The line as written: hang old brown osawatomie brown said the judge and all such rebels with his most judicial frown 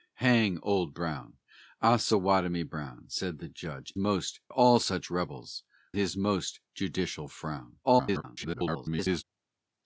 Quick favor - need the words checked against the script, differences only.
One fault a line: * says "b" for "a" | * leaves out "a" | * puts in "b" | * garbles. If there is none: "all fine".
* says "most" for "and"
* leaves out "with"
* garbles